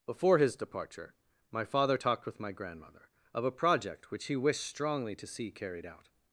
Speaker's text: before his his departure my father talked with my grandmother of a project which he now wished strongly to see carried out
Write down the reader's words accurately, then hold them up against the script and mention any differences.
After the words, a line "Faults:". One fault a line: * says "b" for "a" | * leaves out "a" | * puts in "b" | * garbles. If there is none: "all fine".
before his departure my father talked with my grandmother of a project which he wished strongly to see carried out
Faults:
* leaves out "his"
* leaves out "now"